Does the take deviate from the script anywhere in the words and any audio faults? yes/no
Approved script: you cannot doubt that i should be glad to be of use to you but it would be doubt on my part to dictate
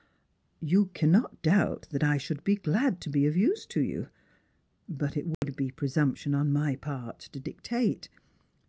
yes